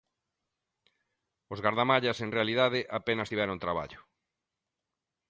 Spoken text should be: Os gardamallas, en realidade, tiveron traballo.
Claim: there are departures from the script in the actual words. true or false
true